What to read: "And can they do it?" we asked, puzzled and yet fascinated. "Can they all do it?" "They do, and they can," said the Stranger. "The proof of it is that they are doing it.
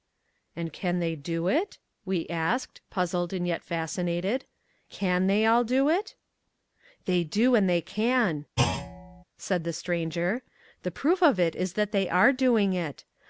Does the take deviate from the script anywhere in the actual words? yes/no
no